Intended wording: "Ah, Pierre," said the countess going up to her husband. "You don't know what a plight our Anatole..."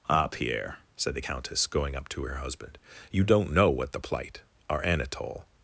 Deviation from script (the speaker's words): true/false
true